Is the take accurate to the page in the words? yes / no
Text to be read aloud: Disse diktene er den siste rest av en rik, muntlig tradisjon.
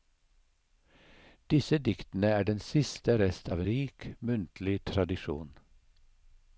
no